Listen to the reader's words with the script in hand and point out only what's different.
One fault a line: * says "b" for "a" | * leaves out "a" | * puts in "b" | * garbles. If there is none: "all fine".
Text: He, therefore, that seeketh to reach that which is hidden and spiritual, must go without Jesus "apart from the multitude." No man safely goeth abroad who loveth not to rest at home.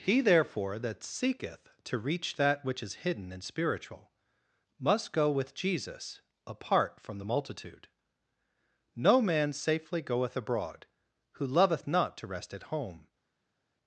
* says "with" for "without"